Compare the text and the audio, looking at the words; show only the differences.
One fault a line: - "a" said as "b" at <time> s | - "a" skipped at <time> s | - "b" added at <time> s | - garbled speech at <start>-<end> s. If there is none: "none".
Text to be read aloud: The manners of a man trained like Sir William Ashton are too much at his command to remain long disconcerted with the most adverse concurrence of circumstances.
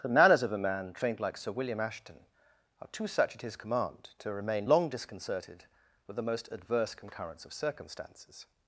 - "much" said as "such" at 3.0 s